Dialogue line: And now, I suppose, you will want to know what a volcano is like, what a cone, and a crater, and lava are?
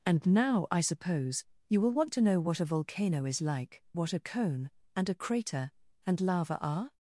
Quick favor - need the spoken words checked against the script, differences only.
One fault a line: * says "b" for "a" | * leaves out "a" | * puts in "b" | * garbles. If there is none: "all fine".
all fine